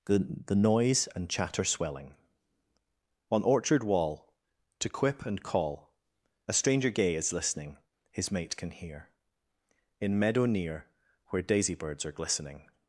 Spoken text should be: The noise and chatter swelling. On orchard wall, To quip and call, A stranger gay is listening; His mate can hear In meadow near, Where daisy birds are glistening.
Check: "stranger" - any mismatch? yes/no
no